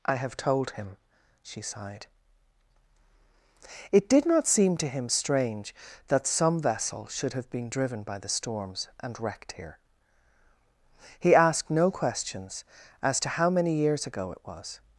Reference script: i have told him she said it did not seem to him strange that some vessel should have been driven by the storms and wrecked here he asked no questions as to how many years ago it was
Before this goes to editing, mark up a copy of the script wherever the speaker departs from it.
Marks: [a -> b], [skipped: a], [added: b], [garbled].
i have told him she [said -> sighed] it did not seem to him strange that some vessel should have been driven by the storms and wrecked here he asked no questions as to how many years ago it was